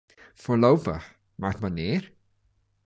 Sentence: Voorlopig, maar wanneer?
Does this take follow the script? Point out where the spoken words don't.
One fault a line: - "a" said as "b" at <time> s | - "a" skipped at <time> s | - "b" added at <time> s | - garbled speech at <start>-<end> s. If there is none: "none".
none